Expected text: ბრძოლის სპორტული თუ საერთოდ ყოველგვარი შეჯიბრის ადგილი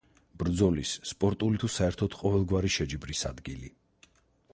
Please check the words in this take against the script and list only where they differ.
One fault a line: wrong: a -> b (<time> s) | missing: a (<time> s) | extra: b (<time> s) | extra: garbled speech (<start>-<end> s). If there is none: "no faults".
no faults